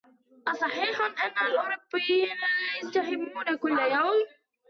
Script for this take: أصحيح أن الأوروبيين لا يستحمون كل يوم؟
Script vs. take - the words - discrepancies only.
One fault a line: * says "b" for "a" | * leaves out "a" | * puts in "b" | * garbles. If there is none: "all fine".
all fine